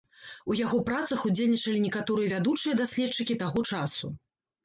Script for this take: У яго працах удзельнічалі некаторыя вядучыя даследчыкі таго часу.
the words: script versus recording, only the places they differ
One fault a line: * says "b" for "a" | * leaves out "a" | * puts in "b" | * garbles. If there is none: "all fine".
all fine